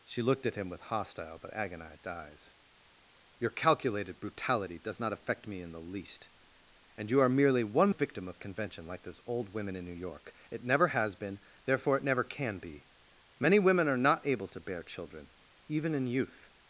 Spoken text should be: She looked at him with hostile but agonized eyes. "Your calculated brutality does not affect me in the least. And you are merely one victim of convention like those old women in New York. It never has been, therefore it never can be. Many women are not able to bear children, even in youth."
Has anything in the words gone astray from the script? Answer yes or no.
no